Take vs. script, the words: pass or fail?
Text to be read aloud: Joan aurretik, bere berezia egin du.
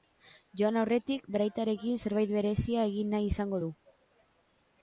fail